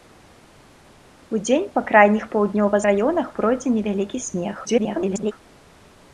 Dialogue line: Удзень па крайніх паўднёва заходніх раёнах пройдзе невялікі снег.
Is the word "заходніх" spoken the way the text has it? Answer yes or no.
no